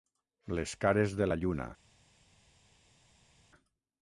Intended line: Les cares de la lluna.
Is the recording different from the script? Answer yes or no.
no